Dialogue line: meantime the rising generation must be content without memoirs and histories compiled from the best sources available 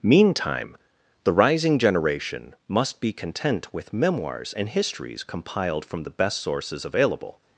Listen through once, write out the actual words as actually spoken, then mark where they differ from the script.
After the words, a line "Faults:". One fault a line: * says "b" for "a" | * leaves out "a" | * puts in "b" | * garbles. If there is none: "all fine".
meantime the rising generation must be content with memoirs and histories compiled from the best sources available
Faults:
* says "with" for "without"